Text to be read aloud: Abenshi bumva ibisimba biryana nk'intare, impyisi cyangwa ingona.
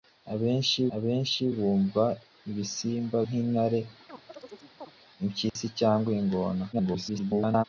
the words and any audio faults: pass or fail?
fail